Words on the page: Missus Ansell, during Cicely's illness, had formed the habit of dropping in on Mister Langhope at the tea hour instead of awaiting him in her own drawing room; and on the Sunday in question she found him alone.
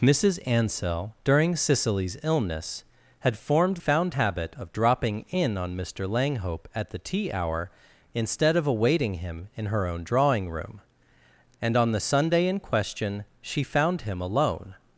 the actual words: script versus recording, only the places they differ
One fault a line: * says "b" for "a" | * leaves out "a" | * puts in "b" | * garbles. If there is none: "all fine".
* says "found" for "the"